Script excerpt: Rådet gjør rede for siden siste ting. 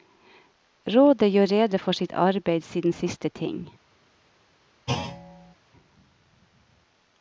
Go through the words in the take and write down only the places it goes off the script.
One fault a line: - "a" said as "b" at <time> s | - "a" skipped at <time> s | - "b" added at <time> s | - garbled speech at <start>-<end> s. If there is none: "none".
- "sitt arbeid" added at 1.9 s